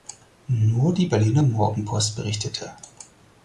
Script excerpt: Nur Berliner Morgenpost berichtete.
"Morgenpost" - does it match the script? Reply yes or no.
yes